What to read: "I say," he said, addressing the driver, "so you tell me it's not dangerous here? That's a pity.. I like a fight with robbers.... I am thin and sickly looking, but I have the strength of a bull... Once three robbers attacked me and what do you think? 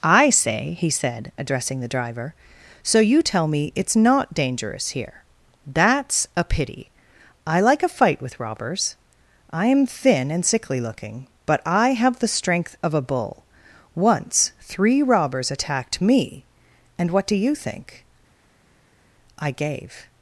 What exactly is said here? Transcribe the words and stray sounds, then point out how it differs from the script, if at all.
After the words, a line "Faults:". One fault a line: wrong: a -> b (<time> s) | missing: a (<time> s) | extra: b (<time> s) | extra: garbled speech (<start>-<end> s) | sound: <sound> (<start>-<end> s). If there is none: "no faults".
"I say," he said, addressing the driver, "so you tell me it's not dangerous here? That's a pity.. I like a fight with robbers.... I am thin and sickly looking, but I have the strength of a bull... Once three robbers attacked me and what do you think? I gave
Faults:
extra: I gave (19.4 s)